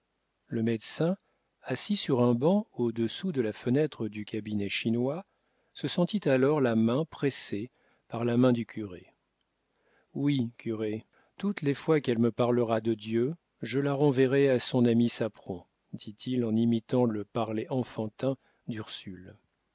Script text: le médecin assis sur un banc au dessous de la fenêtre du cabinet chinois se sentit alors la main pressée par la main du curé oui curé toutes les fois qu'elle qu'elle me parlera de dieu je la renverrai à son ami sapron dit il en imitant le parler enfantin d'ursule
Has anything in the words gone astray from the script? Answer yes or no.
yes